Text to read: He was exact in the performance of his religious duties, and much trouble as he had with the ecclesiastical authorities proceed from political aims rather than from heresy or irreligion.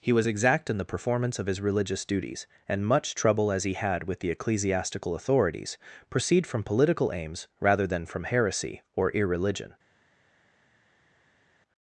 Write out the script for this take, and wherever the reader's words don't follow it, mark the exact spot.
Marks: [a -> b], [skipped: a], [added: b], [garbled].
He was exact in the performance of his religious duties, and much trouble as he had with the ecclesiastical authorities proceed from political aims rather than from heresy or irreligion.